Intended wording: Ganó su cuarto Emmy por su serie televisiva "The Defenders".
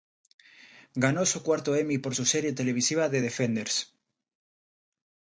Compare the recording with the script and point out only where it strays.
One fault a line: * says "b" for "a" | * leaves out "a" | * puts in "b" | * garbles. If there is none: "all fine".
all fine